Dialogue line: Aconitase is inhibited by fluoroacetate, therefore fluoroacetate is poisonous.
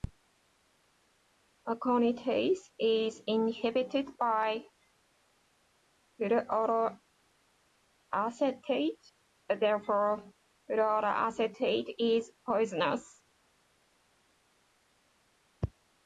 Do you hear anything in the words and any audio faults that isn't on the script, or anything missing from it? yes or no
no